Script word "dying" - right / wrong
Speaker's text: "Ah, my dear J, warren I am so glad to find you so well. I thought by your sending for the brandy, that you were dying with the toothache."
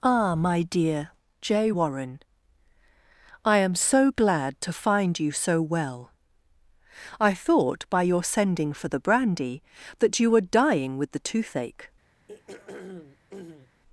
right